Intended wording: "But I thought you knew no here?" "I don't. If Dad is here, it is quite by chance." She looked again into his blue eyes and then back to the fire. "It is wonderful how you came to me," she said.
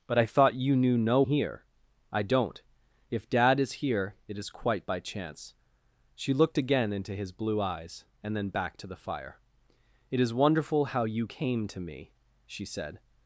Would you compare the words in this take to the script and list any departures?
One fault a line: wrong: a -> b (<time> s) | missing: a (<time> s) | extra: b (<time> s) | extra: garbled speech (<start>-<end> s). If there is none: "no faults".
no faults